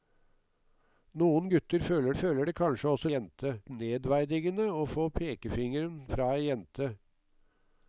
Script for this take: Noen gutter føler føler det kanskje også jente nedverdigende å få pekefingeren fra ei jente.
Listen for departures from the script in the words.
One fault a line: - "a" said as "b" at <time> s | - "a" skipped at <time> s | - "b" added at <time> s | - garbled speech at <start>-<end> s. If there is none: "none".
none